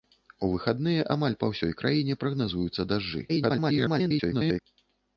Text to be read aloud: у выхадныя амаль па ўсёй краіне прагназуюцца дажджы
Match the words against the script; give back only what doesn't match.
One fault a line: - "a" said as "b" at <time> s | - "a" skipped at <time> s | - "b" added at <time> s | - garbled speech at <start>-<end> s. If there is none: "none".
- garbled speech at 3.3-4.6 s